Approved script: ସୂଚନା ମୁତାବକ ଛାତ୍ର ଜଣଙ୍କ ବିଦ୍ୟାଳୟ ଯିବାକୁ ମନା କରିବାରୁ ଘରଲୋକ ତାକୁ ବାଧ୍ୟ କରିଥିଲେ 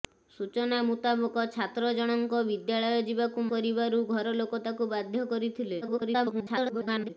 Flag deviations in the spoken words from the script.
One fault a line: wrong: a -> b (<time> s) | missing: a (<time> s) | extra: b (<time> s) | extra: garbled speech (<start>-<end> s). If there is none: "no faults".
missing: ମନା (3.5 s)
extra: garbled speech (5.8-7.1 s)